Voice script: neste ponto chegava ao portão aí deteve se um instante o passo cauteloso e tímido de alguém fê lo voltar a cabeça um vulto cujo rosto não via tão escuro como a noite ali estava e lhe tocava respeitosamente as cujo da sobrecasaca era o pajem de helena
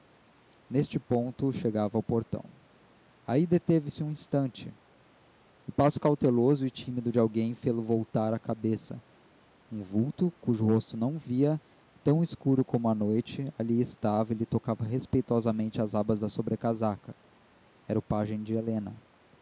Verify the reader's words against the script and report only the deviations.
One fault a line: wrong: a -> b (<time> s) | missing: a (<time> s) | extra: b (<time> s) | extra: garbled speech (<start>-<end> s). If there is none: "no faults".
wrong: cujo -> abas (15.9 s)